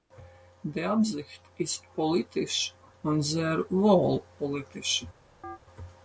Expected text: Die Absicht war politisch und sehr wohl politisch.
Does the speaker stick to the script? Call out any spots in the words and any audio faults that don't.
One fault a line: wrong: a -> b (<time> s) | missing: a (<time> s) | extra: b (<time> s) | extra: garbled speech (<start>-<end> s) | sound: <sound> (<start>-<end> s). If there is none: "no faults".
wrong: war -> ist (1.6 s)
sound: chirp (5.4-5.6 s)